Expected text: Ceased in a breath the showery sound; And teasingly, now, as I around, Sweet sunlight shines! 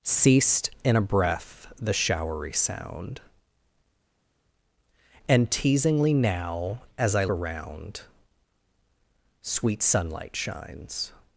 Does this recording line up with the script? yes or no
yes